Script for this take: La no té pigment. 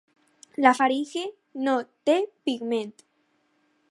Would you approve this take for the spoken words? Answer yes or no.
no